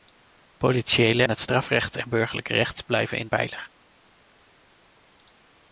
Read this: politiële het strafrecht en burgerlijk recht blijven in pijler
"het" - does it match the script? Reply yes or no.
yes